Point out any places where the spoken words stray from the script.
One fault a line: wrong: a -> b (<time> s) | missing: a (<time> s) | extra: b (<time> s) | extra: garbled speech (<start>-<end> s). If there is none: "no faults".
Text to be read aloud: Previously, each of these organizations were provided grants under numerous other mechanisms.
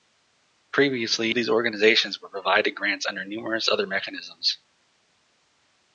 missing: each (1.3 s)